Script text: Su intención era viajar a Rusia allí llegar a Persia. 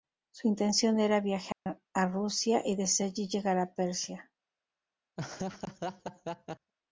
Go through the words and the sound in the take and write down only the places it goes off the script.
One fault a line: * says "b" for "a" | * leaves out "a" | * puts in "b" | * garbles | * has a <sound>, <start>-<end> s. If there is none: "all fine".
* has a dropout, 1.5-1.7 s
* puts in "y desde"
* has a laugh, 5.2-6.7 s